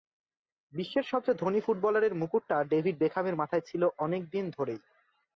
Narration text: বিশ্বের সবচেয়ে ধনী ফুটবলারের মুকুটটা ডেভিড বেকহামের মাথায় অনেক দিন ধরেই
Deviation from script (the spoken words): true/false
true